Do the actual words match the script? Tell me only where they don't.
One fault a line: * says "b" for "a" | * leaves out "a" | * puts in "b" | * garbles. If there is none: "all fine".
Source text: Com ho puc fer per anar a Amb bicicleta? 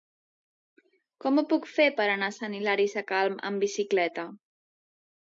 * puts in "Sant Hilari Sacalm"